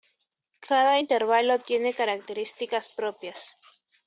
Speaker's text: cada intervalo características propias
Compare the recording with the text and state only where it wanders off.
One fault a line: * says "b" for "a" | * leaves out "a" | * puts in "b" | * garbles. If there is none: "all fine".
* puts in "tiene"